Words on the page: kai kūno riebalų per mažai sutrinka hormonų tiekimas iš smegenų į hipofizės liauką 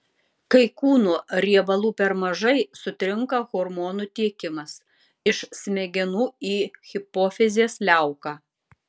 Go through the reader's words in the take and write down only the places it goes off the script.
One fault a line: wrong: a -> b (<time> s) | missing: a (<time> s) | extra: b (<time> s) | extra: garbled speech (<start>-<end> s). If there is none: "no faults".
no faults